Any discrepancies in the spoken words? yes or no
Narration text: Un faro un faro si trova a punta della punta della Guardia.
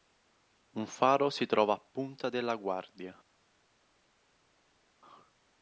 yes